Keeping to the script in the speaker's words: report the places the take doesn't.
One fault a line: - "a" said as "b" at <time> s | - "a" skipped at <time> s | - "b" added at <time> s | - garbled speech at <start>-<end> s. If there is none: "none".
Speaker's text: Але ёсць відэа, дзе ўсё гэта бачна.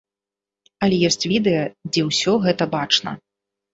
none